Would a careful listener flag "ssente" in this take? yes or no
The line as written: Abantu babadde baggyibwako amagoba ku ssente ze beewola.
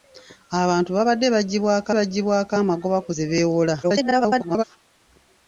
yes